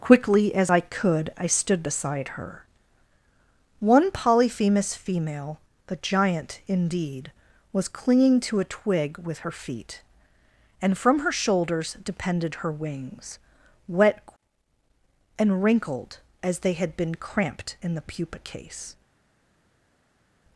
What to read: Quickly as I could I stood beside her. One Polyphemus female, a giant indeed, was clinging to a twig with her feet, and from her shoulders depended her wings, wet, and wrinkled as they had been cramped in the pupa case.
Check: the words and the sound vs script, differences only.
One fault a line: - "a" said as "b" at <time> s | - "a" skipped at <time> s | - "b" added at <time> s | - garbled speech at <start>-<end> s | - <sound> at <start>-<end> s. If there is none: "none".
- "a" said as "the" at 5.9 s